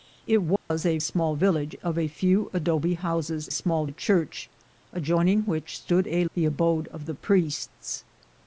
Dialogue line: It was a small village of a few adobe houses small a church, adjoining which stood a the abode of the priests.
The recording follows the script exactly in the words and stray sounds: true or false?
false